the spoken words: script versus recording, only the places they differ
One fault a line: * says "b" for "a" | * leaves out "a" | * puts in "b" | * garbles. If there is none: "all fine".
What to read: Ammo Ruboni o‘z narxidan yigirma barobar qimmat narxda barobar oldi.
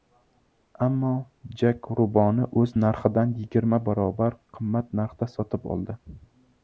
* puts in "Jak"
* says "sotib" for "barobar"